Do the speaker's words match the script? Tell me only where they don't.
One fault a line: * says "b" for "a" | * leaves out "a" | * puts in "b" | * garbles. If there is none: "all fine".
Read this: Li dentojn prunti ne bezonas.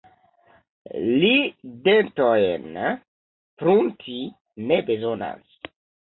all fine